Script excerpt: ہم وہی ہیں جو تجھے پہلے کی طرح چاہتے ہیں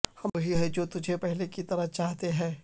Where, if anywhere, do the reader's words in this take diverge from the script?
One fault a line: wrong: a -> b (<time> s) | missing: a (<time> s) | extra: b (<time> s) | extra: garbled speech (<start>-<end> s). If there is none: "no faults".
no faults